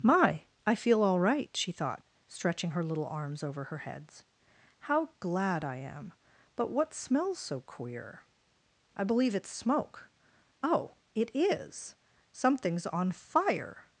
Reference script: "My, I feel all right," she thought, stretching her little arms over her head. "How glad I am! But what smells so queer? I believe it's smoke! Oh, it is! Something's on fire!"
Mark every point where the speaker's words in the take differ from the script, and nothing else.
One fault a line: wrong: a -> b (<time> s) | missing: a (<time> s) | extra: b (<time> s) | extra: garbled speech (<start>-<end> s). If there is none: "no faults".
wrong: head -> heads (3.8 s)